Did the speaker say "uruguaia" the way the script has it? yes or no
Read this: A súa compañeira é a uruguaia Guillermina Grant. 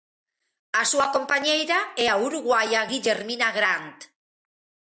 yes